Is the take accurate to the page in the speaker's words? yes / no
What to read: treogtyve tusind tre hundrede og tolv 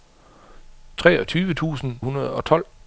no